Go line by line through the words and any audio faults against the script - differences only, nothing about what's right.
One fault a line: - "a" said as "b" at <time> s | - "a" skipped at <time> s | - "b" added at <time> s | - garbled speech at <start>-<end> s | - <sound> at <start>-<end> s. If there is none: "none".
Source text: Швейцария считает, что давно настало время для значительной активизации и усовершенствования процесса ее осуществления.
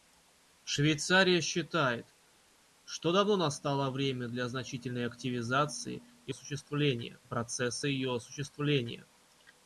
- "усовершенствования" said as "осуществления" at 6.3 s